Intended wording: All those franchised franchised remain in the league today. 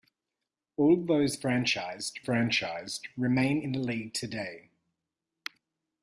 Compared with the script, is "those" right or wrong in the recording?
right